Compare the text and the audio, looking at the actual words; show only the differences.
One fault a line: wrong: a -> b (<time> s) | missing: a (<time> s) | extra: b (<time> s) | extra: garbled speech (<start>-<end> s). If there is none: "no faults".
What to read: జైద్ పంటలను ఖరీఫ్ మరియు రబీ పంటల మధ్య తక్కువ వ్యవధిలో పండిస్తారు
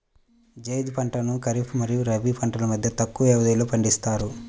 no faults